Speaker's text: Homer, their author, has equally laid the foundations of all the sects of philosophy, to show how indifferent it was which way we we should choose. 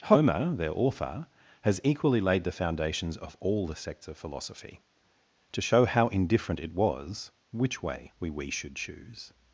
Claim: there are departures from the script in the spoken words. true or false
false